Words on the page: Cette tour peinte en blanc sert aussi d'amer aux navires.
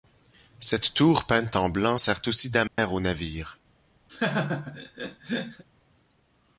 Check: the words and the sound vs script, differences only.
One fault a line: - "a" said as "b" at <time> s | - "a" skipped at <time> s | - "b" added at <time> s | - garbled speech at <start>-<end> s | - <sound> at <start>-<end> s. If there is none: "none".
- dropout at 2.7-2.8 s
- laugh at 4.1-5.6 s